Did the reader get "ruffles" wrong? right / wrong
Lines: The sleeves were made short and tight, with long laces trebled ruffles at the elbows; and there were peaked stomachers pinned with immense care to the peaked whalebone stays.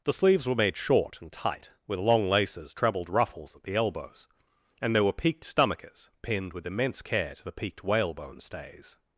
right